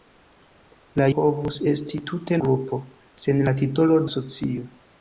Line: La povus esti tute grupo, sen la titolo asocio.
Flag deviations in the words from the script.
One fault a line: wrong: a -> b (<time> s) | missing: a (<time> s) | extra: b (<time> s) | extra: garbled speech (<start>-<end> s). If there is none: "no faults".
no faults